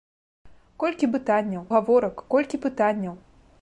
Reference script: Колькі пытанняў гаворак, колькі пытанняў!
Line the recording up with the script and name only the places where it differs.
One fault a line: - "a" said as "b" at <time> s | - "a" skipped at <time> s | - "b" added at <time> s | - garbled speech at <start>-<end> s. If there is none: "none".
none